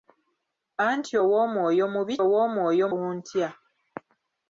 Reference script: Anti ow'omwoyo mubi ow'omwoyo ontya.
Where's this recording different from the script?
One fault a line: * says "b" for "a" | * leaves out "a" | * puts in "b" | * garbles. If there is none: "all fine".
all fine